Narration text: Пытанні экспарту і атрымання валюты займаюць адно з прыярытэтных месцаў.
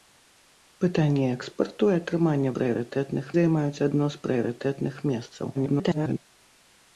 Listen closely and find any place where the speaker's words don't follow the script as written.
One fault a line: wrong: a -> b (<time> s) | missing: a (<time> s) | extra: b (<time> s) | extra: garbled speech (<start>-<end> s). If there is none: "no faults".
wrong: валюты -> прыярытэтных (2.6 s)
extra: garbled speech (5.5-6.2 s)